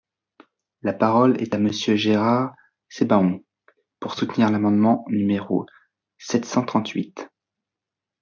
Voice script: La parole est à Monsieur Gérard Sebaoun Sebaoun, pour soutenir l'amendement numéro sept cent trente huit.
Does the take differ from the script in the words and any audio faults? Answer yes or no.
yes